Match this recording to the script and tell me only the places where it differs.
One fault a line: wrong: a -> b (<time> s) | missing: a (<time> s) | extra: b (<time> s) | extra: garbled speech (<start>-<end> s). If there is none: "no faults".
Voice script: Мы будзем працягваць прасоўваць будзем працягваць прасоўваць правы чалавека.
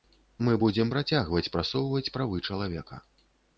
missing: будзем працягваць прасоўваць (2.1 s)